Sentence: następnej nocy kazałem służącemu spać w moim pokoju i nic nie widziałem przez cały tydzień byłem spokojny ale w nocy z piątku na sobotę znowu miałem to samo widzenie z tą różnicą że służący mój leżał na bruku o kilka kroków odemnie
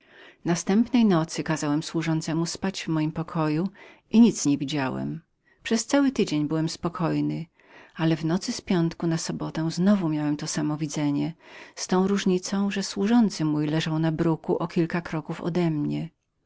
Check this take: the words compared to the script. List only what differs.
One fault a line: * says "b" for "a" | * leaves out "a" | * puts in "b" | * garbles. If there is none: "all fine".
all fine